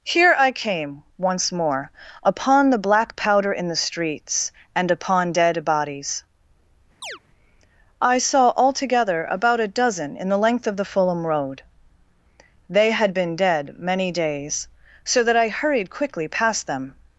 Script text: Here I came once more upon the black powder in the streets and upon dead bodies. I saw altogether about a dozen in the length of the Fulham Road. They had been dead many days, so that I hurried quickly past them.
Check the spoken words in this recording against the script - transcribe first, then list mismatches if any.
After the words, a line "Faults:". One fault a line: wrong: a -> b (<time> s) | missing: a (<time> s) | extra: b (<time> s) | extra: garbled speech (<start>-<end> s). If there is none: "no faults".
Here I came once more upon the black powder in the streets and upon dead bodies. I saw altogether about a dozen in the length of the Fulham Road. They had been dead many days, so that I hurried quickly past them.
Faults:
no faults